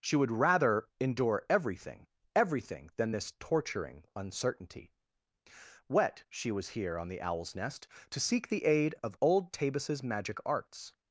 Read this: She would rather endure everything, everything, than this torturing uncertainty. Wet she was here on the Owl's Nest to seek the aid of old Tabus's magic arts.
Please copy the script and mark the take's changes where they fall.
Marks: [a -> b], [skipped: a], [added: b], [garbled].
She would rather endure everything, everything, than this torturing uncertainty. Wet she was here on the Owl's Nest to seek the aid of old Tabus's magic arts.